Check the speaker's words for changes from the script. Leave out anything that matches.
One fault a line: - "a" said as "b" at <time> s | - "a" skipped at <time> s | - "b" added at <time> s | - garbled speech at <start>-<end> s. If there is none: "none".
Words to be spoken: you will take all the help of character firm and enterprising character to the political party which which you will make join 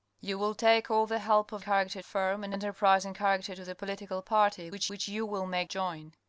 none